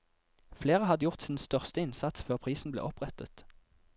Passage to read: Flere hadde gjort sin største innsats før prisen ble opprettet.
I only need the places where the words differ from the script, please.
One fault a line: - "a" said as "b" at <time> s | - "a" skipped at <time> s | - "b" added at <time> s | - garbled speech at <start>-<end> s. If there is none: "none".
none